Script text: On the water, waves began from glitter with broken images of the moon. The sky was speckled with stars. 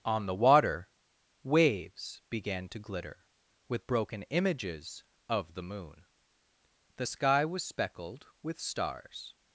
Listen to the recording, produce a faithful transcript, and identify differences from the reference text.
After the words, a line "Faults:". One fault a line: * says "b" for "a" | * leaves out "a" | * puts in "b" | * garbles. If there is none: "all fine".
On the water, waves began to glitter with broken images of the moon. The sky was speckled with stars.
Faults:
* says "to" for "from"